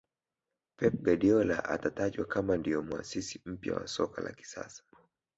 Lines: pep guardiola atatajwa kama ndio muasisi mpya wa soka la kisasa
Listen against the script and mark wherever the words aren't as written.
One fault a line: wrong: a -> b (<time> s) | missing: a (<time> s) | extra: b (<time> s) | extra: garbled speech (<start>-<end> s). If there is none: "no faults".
no faults